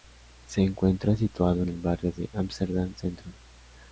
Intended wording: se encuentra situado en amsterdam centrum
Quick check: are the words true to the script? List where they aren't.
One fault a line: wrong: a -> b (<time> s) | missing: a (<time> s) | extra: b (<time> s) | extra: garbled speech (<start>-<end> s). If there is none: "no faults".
extra: el barrio de (1.7 s)